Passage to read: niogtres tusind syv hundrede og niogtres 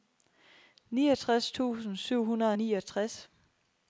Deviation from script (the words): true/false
false